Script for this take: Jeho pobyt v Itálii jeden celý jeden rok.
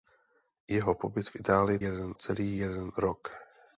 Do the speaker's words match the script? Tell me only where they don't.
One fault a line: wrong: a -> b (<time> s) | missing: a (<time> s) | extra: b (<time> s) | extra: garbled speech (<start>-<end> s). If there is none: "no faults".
no faults